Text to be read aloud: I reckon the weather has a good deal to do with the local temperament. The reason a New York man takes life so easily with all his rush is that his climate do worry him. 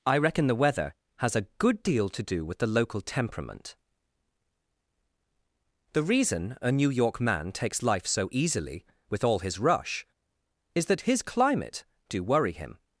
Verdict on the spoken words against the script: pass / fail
pass